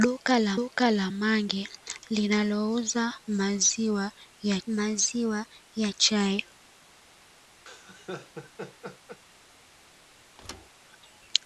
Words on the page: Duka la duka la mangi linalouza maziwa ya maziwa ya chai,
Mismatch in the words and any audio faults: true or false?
true